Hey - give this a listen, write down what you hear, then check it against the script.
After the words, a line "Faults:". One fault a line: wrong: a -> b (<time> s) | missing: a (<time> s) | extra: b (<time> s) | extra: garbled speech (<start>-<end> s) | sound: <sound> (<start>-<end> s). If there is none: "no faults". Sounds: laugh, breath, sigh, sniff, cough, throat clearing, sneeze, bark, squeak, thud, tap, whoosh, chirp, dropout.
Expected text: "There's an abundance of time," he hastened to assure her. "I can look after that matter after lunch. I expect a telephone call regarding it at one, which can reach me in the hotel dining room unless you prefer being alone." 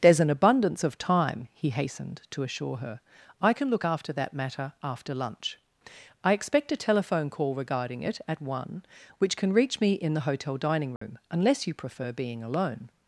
"There's an abundance of time," he hastened to assure her. "I can look after that matter after lunch. I expect a telephone call regarding it at one, which can reach me in the hotel dining room unless you prefer being alone."
Faults:
sound: dropout (11.0-11.0 s)